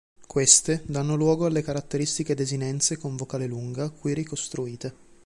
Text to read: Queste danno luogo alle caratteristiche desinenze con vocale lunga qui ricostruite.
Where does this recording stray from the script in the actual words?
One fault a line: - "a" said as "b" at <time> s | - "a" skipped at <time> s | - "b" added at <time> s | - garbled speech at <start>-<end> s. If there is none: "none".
none